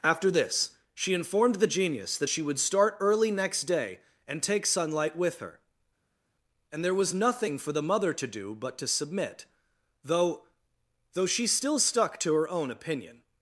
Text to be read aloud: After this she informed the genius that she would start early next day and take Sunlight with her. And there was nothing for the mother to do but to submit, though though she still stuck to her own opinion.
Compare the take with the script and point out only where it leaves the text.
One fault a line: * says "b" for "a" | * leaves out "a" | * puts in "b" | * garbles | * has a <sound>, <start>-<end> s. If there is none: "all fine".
all fine